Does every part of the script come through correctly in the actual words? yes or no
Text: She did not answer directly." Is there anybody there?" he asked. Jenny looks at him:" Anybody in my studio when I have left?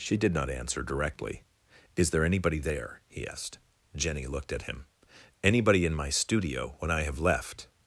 no